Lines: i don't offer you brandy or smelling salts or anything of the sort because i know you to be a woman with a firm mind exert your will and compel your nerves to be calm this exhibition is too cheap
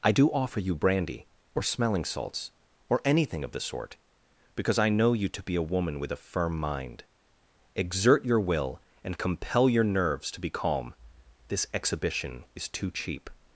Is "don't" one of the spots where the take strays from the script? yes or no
yes